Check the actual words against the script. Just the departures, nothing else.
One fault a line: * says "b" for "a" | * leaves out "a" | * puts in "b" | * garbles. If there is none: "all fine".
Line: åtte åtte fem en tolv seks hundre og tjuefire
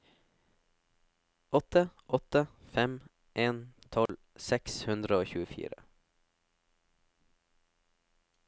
all fine